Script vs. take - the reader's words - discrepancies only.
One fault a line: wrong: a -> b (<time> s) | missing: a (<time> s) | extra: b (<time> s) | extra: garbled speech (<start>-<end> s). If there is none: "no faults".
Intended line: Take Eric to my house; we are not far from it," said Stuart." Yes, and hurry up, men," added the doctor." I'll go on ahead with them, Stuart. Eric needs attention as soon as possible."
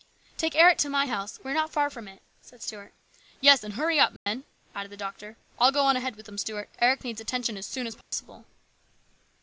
no faults